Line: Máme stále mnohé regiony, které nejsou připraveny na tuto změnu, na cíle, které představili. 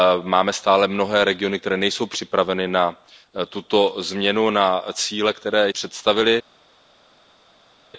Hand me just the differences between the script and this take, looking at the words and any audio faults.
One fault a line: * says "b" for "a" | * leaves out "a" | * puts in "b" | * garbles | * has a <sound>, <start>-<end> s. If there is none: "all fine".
all fine